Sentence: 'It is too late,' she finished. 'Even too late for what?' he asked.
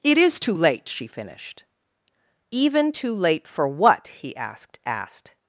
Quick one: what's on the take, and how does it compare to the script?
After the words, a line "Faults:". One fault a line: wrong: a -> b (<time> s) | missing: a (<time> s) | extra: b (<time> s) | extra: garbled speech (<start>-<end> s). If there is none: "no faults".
'It is too late,' she finished. 'Even too late for what?' he asked asked.
Faults:
extra: asked (4.8 s)